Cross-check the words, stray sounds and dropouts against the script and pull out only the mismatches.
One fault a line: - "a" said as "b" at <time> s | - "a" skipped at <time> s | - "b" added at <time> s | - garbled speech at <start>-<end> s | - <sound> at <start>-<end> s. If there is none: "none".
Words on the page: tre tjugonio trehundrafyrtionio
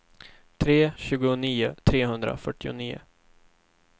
none